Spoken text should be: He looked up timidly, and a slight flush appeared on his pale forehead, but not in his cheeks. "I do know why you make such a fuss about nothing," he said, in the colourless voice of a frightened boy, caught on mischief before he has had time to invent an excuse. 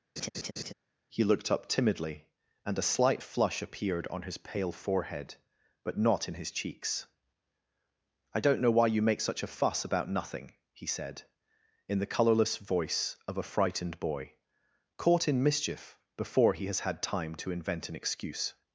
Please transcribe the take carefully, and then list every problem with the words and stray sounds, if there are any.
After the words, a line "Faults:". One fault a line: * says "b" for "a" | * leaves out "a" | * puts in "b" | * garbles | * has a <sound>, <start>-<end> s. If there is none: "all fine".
He looked up timidly, and a slight flush appeared on his pale forehead, but not in his cheeks. "I don't know why you make such a fuss about nothing," he said, in the colourless voice of a frightened boy, caught in mischief before he has had time to invent an excuse.
Faults:
* has a laugh, 0.2-0.7 s
* says "don't" for "do"
* says "in" for "on"